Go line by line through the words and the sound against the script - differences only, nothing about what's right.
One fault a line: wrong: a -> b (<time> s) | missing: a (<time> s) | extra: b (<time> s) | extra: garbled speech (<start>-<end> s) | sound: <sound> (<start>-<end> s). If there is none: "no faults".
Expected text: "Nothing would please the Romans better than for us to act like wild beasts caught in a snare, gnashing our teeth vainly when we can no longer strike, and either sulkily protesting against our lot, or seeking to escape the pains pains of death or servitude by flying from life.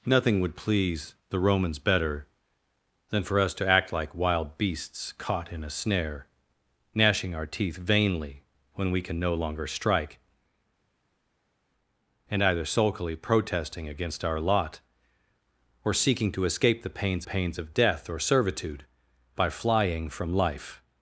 no faults